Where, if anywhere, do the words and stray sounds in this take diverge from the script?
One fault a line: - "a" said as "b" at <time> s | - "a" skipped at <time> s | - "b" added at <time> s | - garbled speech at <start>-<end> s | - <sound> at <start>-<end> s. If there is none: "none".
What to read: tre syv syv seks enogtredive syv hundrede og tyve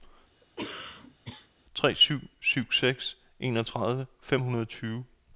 - cough at 0.4-1.5 s
- "syv" said as "fem" at 4.2 s